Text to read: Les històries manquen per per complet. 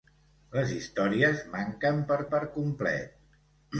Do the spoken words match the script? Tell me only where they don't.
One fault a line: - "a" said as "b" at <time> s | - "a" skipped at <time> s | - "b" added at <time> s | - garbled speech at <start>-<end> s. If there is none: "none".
none